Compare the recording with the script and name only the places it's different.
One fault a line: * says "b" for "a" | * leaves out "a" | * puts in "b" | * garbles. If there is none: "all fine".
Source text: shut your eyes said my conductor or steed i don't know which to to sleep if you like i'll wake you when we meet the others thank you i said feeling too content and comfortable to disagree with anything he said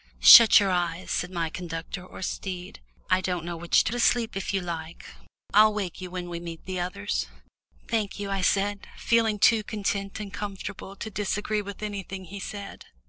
all fine